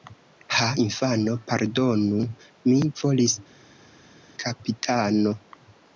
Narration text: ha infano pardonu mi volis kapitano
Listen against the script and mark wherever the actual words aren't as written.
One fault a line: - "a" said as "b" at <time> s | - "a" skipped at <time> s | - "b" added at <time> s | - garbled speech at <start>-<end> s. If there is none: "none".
none